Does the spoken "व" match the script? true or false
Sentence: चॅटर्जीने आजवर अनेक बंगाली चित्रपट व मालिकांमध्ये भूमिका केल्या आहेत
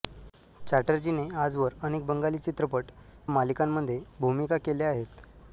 false